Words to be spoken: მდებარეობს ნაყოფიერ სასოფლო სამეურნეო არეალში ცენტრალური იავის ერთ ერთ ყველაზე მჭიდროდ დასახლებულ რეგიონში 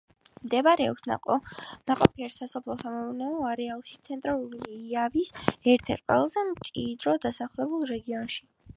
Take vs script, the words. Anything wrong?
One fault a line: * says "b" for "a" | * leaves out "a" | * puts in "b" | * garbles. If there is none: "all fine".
all fine